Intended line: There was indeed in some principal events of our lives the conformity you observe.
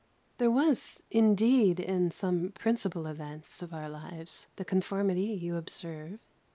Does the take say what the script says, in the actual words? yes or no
yes